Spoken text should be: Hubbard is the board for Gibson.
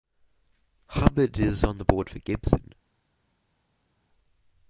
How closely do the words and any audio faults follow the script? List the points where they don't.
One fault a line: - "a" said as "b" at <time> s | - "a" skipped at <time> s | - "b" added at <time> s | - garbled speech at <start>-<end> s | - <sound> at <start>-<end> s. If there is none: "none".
- "on" added at 1.6 s